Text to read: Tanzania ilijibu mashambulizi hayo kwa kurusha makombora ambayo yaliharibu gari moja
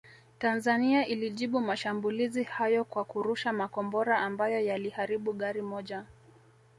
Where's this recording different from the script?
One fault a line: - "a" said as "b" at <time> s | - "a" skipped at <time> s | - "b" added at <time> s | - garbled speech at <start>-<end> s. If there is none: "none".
none